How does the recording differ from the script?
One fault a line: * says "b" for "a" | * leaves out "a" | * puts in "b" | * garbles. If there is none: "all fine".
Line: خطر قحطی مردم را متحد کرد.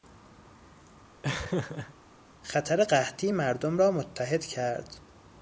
all fine